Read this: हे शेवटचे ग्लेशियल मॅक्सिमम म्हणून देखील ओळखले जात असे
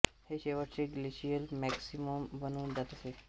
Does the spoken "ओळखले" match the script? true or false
false